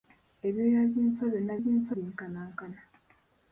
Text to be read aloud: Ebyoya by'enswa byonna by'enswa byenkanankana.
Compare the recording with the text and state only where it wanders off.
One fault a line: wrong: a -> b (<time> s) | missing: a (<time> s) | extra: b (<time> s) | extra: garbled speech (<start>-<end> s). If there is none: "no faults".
no faults